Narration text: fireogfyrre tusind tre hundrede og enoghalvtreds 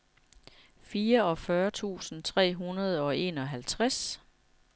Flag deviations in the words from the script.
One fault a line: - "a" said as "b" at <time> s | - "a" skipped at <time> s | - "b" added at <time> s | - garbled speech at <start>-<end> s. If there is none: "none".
none